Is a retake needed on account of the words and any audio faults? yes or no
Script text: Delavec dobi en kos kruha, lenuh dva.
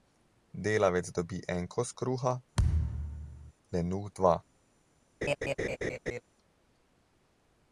yes